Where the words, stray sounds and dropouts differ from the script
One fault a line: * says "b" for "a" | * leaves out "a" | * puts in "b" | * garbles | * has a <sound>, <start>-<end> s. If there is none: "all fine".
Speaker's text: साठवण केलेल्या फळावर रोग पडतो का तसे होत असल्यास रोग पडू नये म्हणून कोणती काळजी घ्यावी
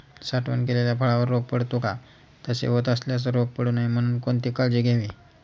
all fine